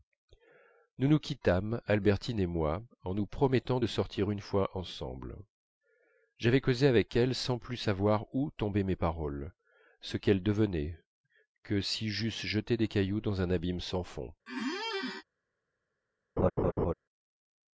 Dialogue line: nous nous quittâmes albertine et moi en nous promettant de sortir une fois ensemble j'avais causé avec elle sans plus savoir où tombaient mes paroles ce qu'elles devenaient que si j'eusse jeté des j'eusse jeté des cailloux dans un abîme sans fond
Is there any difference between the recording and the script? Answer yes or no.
yes